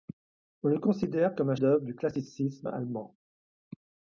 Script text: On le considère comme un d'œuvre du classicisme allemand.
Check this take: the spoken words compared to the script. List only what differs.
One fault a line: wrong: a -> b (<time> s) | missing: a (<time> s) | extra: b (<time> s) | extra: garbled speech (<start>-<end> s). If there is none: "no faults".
no faults